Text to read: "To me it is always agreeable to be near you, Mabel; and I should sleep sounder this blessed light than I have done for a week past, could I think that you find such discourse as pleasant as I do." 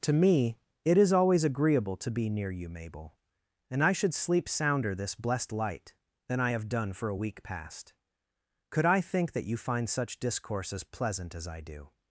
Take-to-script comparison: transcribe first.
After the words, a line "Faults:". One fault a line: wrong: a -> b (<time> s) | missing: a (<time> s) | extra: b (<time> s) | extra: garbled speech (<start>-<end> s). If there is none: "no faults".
"To me it is always agreeable to be near you, Mabel; and I should sleep sounder this blessed light than I have done for a week past, could I think that you find such discourse as pleasant as I do."
Faults:
no faults